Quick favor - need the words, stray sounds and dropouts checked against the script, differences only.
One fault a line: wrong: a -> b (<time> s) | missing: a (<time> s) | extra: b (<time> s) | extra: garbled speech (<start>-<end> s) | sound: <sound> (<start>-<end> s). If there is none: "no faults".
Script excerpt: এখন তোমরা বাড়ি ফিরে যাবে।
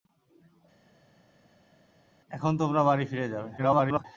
extra: garbled speech (3.6-4.0 s)